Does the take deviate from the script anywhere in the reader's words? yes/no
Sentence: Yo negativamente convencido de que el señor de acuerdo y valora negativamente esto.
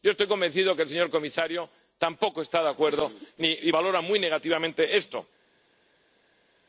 yes